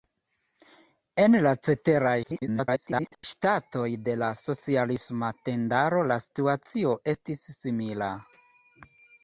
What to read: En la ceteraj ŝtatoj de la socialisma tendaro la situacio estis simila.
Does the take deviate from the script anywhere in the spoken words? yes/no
yes